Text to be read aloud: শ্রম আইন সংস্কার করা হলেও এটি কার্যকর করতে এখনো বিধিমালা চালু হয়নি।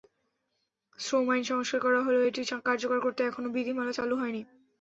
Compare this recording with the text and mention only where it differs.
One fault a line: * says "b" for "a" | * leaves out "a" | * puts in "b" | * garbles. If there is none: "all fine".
all fine